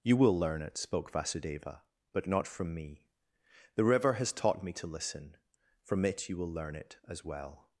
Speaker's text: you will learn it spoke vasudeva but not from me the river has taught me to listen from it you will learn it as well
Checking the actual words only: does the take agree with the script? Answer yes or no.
yes